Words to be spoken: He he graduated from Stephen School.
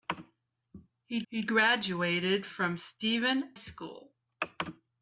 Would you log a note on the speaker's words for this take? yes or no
no